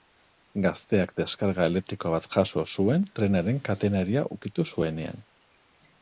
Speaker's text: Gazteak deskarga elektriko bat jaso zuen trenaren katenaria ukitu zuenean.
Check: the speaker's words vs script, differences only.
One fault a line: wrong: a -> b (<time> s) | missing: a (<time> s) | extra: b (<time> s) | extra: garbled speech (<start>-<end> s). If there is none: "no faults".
no faults